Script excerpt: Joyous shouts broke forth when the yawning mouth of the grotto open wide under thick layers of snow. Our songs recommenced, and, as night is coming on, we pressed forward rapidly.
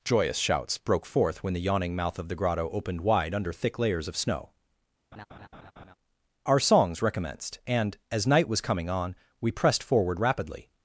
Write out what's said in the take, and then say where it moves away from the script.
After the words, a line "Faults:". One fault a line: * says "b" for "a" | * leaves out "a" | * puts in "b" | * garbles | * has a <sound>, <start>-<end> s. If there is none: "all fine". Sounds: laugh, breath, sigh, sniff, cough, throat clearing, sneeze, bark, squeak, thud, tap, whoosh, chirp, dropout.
Joyous shouts broke forth when the yawning mouth of the grotto opened wide under thick layers of snow. Our songs recommenced, and, as night was coming on, we pressed forward rapidly.
Faults:
* says "opened" for "open"
* has a laugh, 5.1-5.9 s
* says "was" for "is"